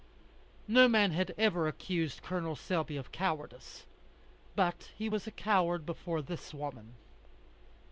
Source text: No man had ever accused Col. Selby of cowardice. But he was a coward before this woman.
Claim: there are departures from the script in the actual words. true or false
false